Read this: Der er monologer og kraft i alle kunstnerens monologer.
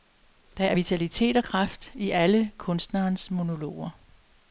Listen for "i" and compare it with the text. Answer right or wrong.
right